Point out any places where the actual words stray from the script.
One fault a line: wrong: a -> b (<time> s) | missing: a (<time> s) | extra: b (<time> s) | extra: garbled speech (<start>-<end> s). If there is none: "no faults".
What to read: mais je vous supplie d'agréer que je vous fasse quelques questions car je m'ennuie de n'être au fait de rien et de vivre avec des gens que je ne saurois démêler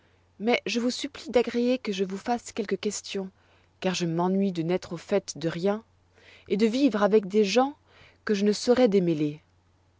no faults